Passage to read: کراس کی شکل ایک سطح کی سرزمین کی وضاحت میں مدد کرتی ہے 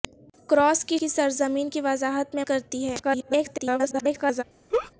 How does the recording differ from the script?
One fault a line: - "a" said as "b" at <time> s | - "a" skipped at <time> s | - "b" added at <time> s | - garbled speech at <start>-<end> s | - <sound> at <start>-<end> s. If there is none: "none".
- "شکل ایک سطح" skipped at 1.0 s
- "مدد" skipped at 2.4 s
- garbled speech at 3.0-4.4 s
- laugh at 4.7-4.9 s